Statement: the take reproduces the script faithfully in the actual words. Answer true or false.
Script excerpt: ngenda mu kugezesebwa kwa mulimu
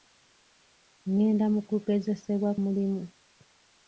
false